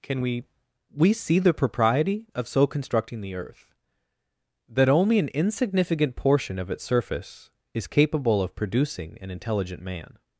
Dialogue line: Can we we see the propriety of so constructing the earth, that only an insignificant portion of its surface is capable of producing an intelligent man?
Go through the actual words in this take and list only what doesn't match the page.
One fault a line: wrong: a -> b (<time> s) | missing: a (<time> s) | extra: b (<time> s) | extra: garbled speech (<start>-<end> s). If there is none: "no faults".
no faults